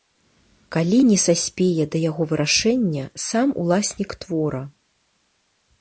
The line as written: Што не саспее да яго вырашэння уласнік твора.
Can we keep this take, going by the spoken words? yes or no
no